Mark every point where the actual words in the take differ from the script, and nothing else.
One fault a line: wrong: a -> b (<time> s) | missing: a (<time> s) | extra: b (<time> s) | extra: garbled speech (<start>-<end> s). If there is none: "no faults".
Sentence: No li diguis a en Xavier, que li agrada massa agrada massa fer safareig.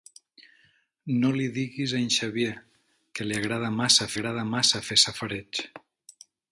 no faults